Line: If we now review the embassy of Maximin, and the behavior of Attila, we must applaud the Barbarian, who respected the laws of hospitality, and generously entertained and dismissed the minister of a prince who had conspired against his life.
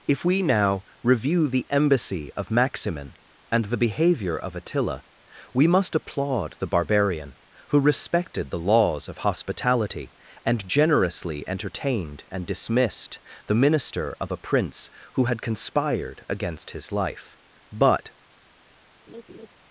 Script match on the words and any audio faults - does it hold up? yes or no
no